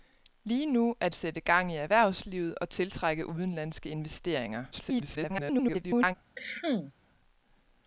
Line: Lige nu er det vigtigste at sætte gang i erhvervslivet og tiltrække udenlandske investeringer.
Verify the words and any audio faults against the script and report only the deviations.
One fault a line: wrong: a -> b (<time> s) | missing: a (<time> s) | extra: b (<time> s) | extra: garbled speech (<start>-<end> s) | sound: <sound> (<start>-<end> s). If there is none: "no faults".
missing: det vigtigste at (1.1 s)
extra: garbled speech (4.7-6.2 s)
sound: cough (6.3-6.9 s)